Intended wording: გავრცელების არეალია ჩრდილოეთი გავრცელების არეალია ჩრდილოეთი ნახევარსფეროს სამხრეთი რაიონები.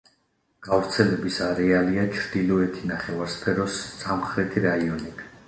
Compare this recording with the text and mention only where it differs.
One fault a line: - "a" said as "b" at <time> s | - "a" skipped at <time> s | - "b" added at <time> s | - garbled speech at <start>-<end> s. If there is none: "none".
- "გავრცელების არეალია ჩრდილოეთი" skipped at 2.9 s